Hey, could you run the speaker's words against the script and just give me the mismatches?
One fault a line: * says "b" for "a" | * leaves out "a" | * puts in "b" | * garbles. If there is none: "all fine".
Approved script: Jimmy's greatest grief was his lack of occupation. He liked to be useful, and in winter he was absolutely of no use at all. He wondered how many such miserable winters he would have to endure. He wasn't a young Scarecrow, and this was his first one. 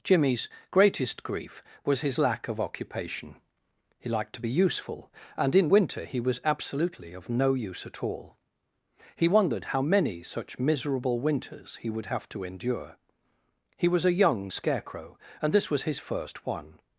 * says "was" for "wasn't"